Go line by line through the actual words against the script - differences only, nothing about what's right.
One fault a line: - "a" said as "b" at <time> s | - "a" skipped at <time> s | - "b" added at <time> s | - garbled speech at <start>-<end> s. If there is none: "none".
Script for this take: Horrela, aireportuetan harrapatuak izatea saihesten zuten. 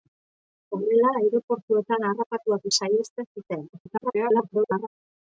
- "izatea" skipped at 2.6 s
- garbled speech at 3.7-4.9 s